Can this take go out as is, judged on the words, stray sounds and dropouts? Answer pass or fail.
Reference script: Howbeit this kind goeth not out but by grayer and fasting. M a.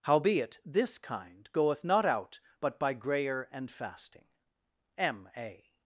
pass